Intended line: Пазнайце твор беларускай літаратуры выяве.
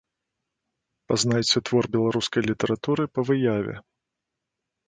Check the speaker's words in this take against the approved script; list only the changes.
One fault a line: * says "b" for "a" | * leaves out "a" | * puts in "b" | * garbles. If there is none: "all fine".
* puts in "па"